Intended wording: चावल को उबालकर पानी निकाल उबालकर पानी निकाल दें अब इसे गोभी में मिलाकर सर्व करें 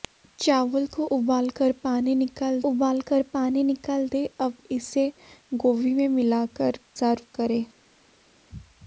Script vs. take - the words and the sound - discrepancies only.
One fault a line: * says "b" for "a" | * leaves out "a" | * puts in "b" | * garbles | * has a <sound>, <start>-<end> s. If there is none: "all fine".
all fine